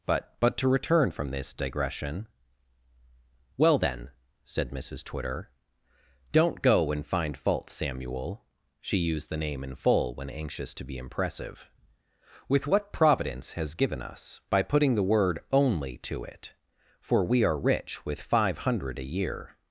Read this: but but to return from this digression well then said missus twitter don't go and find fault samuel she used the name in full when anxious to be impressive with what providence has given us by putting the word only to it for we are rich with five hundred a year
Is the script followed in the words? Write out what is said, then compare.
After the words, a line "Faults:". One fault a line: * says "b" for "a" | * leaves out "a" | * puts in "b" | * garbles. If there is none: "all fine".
but but to return from this digression well then said missus twitter don't go and find fault samuel she used the name in full when anxious to be impressive with what providence has given us by putting the word only to it for we are rich with five hundred a year
Faults:
all fine